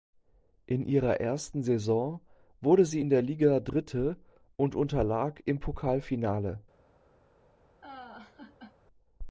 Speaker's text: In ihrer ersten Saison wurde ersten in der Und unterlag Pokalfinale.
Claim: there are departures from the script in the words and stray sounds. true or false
true